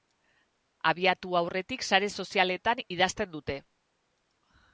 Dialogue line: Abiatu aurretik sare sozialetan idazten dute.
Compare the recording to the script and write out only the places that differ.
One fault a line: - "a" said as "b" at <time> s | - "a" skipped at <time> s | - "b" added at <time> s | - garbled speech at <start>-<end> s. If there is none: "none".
none